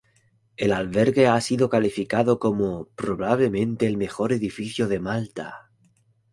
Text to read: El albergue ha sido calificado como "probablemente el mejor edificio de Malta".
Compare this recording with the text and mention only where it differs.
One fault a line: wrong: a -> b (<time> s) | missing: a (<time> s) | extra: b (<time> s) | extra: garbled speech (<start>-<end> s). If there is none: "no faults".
no faults